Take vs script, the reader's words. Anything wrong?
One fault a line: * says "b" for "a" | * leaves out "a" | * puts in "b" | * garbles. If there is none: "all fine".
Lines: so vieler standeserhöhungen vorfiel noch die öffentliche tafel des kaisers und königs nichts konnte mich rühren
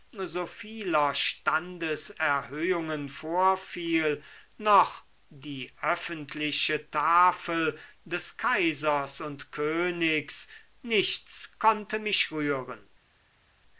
all fine